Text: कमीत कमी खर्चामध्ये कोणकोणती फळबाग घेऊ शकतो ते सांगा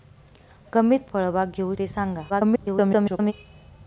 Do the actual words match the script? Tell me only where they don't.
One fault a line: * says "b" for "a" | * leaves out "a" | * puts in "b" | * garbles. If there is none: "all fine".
* leaves out "कमी खर्चामध्ये कोणकोणती"
* leaves out "शकतो"
* garbles